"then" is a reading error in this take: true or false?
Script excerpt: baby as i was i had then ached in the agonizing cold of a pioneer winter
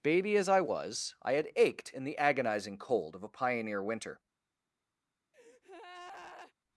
true